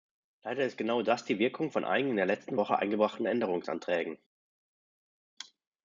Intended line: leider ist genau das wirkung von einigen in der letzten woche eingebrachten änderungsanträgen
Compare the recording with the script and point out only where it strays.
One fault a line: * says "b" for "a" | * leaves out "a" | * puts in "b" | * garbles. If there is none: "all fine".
* puts in "die"